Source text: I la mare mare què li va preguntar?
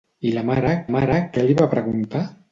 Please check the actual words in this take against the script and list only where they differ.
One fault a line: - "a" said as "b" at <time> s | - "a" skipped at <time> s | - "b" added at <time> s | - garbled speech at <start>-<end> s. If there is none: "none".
none